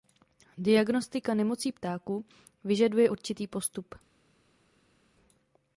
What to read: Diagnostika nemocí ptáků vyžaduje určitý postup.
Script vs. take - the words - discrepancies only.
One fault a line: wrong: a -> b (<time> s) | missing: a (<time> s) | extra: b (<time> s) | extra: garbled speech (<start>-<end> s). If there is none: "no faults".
no faults